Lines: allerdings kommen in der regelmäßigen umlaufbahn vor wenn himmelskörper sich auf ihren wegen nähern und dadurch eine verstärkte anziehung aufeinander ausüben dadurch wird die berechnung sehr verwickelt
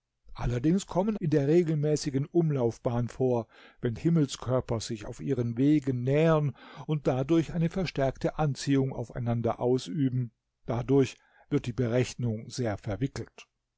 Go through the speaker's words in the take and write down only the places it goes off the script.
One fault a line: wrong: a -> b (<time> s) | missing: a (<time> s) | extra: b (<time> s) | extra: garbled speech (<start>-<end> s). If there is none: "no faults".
no faults